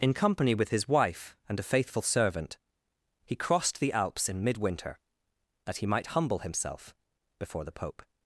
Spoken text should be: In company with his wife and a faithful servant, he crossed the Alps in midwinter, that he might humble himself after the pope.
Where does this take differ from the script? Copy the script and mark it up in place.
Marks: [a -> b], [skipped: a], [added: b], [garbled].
In company with his wife and a faithful servant, he crossed the Alps in midwinter, that he might humble himself [after -> before] the pope.